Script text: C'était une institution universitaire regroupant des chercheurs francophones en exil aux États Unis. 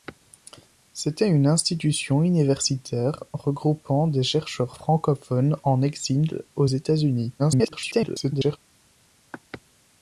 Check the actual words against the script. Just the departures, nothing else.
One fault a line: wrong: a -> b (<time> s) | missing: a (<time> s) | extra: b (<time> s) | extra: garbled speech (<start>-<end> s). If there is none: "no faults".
extra: garbled speech (7.4-8.6 s)